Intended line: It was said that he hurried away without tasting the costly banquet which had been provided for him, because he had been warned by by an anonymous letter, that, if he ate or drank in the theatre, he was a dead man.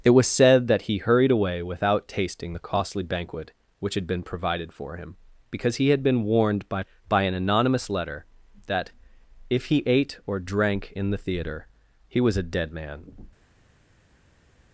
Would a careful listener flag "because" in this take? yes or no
no